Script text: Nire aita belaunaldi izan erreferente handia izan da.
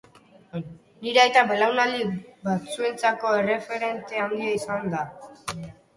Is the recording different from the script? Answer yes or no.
yes